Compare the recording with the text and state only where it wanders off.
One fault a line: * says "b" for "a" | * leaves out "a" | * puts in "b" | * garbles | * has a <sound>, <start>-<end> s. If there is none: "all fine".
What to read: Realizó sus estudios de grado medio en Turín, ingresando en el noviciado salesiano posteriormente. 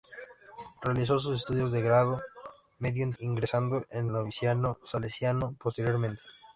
* leaves out "Turín"
* leaves out "el"